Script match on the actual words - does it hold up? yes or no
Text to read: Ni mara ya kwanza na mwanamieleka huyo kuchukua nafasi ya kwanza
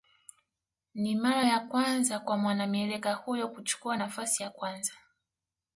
no